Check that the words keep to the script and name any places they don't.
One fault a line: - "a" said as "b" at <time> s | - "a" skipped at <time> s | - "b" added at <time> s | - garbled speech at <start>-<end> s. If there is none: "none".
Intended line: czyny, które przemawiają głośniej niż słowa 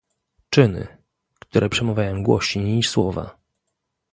none